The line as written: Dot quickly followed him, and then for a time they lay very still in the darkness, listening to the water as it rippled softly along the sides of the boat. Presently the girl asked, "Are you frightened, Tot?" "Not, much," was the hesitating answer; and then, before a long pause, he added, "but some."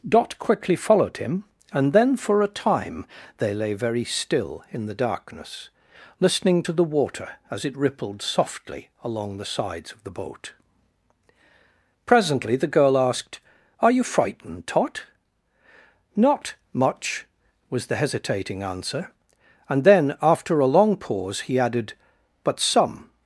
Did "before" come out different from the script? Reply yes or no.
yes